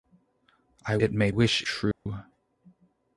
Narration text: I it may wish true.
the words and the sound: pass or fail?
fail